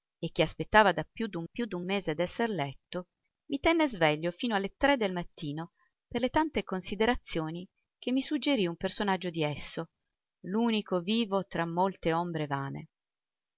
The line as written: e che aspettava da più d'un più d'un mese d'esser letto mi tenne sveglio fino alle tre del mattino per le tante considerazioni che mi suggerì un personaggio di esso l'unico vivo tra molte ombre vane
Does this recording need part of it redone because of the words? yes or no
no